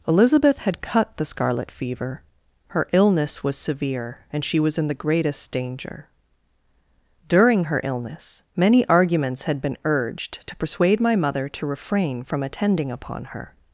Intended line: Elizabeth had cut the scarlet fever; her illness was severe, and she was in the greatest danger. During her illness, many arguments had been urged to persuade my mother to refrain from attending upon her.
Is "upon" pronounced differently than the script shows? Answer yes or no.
no